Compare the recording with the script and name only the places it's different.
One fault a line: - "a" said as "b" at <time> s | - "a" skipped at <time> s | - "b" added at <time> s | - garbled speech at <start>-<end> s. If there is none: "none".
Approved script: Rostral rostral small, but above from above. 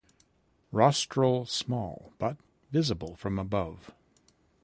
- "rostral" skipped at 1.4 s
- "above" said as "visible" at 2.7 s